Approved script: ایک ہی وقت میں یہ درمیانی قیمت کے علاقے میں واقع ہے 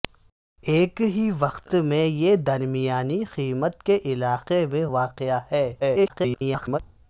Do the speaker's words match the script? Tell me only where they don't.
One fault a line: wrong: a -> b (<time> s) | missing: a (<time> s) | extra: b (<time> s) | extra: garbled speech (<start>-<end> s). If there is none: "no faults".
extra: garbled speech (5.8-6.8 s)